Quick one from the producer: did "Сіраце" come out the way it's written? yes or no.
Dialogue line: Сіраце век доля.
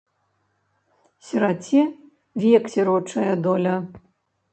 yes